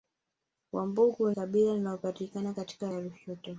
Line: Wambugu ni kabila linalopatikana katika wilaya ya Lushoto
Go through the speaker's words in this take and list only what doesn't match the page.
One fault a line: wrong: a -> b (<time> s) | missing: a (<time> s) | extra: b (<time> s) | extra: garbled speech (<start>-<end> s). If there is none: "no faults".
missing: ni (1.3 s)
missing: wilaya (2.9 s)